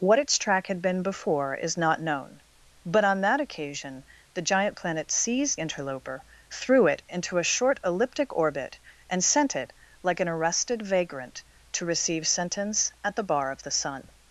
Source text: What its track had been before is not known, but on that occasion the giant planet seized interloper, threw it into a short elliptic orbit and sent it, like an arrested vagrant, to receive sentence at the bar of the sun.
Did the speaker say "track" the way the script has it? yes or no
yes